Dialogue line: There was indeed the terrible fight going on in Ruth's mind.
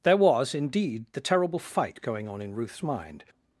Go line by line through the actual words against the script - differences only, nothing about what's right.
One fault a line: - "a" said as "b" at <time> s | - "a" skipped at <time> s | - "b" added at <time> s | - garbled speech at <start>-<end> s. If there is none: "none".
none